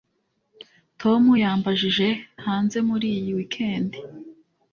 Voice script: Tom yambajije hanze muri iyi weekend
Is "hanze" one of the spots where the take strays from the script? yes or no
no